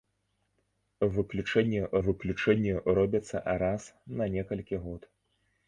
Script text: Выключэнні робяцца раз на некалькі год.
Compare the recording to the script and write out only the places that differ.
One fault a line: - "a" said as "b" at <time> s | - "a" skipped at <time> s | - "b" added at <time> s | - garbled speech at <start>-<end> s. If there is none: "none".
- "выключэнні" added at 2.1 s